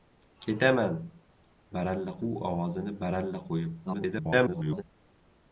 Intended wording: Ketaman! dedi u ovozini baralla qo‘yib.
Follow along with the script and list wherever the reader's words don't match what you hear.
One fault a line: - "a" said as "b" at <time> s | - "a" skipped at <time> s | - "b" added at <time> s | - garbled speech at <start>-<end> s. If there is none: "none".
- "dedi" said as "baralla" at 1.8 s
- garbled speech at 3.9-4.8 s